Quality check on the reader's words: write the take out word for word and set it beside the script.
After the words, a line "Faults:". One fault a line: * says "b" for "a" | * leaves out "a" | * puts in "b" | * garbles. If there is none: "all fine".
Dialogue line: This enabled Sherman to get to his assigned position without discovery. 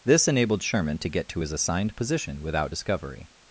This enabled Sherman to get to his assigned position without discovery.
Faults:
all fine